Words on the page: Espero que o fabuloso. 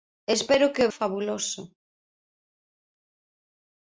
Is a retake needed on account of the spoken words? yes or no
no